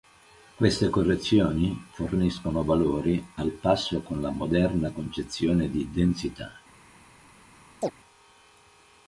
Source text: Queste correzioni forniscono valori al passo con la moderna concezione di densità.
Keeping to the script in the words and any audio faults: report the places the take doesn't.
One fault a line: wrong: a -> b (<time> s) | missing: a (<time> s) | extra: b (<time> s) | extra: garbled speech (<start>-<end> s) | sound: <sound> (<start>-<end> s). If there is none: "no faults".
sound: chirp (7.8-7.9 s)